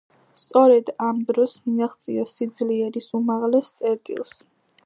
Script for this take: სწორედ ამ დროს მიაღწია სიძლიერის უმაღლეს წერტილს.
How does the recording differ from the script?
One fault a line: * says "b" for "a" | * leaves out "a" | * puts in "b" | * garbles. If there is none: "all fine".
all fine